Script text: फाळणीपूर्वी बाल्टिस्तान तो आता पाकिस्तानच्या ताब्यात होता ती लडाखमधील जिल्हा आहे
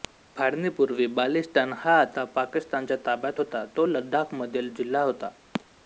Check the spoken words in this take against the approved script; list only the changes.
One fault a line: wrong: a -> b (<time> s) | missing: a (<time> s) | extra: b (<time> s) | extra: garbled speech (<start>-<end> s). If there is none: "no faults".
wrong: तो -> हा (1.8 s)
wrong: ती -> तो (3.8 s)
wrong: आहे -> होता (5.0 s)